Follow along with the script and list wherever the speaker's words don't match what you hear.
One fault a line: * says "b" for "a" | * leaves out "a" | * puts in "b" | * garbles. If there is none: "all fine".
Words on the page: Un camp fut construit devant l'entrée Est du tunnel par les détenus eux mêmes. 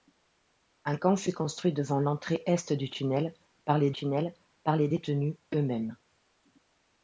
* puts in "tunnel par les"